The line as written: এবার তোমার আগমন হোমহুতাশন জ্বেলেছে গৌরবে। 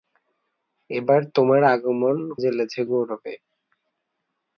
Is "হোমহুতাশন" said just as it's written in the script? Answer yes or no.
no